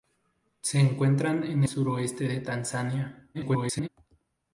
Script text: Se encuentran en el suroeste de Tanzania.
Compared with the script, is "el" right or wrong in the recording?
wrong